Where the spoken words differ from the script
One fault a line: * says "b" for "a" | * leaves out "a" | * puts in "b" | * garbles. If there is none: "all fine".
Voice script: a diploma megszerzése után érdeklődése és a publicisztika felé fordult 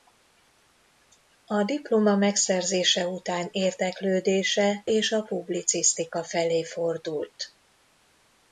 all fine